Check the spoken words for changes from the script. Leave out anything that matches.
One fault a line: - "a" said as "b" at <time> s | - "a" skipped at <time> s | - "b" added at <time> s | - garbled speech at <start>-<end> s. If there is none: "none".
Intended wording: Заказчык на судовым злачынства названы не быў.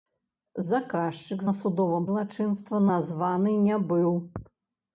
none